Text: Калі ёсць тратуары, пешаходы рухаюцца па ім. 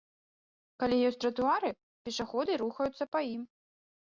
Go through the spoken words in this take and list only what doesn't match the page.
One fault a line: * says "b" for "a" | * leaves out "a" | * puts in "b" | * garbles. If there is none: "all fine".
all fine